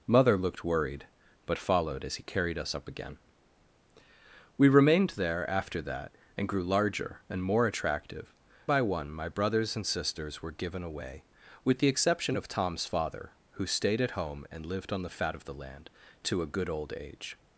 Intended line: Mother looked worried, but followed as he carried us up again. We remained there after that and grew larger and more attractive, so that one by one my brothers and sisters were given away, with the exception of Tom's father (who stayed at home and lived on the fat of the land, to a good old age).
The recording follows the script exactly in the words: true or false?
false